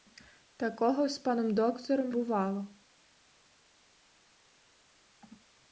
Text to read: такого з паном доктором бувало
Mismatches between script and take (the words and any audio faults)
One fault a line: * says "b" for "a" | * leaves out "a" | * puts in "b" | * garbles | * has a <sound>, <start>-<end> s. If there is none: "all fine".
all fine